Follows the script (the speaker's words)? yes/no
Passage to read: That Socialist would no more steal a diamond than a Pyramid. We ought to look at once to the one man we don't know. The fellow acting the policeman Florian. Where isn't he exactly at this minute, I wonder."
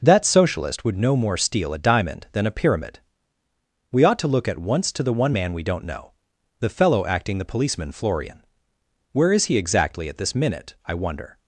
no